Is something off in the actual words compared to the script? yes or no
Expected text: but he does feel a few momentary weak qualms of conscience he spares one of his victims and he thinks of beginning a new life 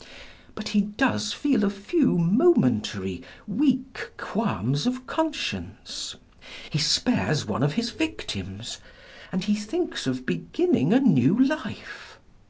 no